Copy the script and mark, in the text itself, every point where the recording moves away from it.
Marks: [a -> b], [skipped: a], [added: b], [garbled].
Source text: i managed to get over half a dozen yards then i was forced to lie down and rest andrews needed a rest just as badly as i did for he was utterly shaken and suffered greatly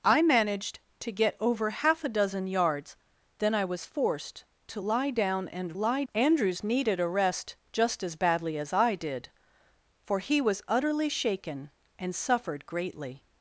i managed to get over half a dozen yards then i was forced to lie down and [rest -> lie] andrews needed a rest just as badly as i did for he was utterly shaken and suffered greatly